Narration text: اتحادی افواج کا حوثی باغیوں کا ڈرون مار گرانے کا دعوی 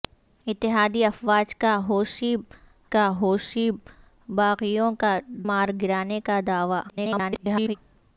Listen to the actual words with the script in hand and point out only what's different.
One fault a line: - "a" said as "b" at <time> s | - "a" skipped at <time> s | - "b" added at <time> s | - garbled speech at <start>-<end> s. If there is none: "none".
- "کا حوثی" added at 2.9 s
- "ڈرون" skipped at 5.2 s
- garbled speech at 6.9-7.8 s